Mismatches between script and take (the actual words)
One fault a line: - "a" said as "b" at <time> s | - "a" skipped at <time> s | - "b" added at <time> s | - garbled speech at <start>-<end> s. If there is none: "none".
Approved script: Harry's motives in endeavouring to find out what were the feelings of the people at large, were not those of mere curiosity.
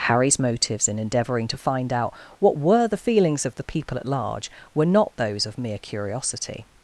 none